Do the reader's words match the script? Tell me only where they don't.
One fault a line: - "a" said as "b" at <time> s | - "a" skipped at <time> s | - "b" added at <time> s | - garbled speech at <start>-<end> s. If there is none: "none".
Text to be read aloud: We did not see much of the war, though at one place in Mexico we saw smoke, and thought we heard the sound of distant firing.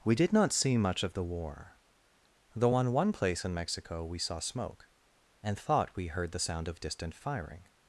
- "at" said as "on" at 2.7 s